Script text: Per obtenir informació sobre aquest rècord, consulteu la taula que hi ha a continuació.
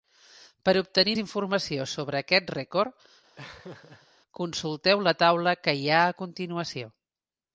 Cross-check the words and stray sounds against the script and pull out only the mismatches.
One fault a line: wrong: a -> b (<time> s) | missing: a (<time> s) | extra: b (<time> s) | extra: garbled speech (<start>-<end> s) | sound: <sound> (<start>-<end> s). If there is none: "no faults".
sound: laugh (3.4-4.1 s)